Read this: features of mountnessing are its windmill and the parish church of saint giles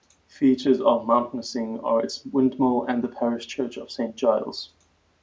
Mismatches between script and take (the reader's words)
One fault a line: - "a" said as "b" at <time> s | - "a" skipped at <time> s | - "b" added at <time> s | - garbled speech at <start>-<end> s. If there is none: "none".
none